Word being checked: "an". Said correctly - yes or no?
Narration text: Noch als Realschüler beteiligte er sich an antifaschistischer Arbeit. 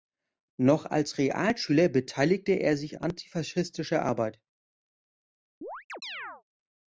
no